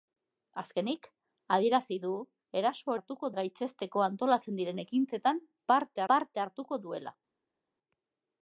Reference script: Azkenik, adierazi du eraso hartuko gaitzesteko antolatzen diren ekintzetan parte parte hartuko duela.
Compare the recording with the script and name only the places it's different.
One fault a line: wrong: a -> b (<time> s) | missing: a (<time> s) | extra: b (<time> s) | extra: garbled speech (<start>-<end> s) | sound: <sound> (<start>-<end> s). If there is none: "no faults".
no faults